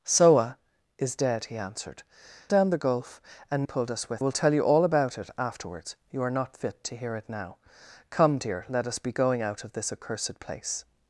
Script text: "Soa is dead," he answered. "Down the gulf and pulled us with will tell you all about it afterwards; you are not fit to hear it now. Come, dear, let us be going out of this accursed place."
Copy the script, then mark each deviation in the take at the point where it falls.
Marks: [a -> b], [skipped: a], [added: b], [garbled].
"Soa is dead," he answered. "Down the gulf and pulled us with will tell you all about it afterwards; you are not fit to hear it now. Come, dear, let us be going out of this accursed place."